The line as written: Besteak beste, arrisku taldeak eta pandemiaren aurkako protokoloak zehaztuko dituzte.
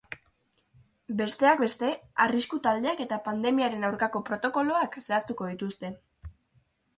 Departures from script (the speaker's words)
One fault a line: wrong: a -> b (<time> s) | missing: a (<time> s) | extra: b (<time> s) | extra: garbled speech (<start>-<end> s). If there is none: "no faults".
no faults